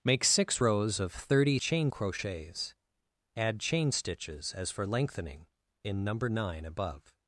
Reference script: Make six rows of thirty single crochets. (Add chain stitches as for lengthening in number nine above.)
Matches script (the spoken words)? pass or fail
fail